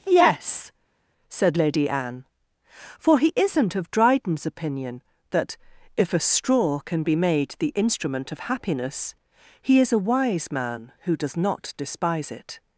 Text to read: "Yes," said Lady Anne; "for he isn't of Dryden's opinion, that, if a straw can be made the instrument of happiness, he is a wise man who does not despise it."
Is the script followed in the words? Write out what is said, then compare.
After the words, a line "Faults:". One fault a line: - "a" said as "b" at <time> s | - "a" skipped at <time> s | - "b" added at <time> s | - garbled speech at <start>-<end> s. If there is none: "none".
"Yes," said Lady Anne; "for he isn't of Dryden's opinion, that, if a straw can be made the instrument of happiness, he is a wise man who does not despise it."
Faults:
none